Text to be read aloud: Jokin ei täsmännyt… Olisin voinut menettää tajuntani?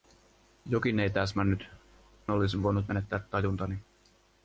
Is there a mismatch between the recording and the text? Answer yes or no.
no